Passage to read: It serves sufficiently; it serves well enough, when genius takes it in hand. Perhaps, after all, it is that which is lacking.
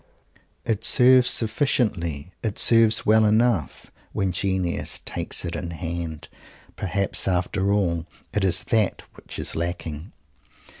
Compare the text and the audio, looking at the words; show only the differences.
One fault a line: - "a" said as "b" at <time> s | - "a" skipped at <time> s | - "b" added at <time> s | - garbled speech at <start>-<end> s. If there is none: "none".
none